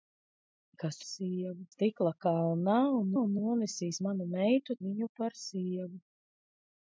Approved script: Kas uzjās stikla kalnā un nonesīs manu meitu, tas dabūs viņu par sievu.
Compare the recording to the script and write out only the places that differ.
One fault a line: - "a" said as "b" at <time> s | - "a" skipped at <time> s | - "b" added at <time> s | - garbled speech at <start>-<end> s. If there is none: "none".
- "uzjās" said as "sievu" at 1.1 s
- "un" added at 3.2 s
- "tas dabūs" skipped at 4.8 s